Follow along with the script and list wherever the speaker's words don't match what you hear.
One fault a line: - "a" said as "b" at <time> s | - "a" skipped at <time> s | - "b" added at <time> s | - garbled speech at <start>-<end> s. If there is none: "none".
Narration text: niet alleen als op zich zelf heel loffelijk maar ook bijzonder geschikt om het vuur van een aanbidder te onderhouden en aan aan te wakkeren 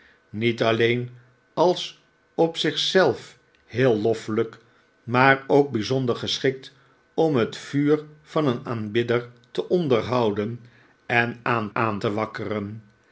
none